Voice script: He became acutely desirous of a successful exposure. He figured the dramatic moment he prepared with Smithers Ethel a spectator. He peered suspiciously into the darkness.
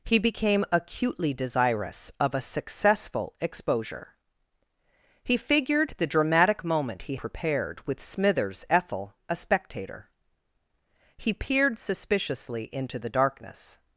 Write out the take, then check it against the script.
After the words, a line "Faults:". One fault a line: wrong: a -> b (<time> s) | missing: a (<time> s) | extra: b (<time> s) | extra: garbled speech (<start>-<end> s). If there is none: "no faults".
He became acutely desirous of a successful exposure. He figured the dramatic moment he prepared with Smithers Ethel a spectator. He peered suspiciously into the darkness.
Faults:
no faults